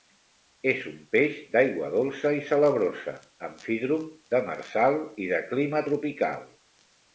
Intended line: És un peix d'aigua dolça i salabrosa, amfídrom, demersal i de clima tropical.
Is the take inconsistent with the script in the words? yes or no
no